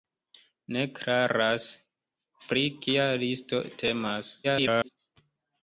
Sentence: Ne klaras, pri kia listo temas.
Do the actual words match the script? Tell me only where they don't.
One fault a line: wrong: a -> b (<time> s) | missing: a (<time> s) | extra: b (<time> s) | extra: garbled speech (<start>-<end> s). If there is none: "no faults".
extra: garbled speech (4.4-4.9 s)